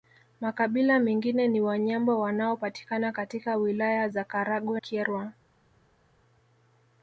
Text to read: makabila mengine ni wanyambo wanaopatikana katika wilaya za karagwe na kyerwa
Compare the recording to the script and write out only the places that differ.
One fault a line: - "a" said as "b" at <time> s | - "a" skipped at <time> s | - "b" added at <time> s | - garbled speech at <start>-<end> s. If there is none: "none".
- "na" skipped at 4.8 s